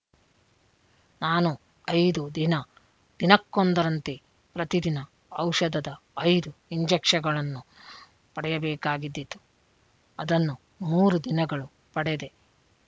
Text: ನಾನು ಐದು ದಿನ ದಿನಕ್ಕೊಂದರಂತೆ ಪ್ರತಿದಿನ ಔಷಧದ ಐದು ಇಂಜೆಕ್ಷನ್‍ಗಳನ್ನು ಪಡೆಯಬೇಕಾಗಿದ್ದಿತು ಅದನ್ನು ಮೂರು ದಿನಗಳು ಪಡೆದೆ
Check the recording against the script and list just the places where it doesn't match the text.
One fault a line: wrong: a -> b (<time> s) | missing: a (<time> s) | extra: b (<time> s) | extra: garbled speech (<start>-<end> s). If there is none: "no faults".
no faults